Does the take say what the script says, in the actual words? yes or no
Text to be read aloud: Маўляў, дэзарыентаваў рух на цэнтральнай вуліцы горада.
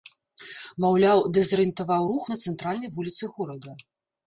yes